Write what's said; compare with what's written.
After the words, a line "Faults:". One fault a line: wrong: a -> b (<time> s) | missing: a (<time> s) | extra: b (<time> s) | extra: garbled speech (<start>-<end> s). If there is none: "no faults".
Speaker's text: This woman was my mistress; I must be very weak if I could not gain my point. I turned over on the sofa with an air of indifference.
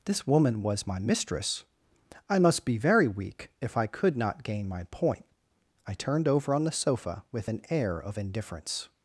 This woman was my mistress; I must be very weak if I could not gain my point. I turned over on the sofa with an air of indifference.
Faults:
no faults